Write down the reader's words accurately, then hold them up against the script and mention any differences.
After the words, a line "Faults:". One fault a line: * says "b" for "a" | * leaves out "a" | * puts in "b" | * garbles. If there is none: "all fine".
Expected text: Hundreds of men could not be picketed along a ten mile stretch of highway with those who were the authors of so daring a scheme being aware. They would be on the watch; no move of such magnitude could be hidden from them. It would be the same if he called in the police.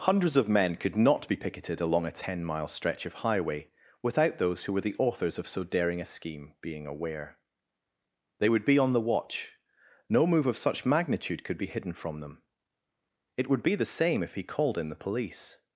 Hundreds of men could not be picketed along a ten mile stretch of highway without those who were the authors of so daring a scheme being aware. They would be on the watch; no move of such magnitude could be hidden from them. It would be the same if he called in the police.
Faults:
* says "without" for "with"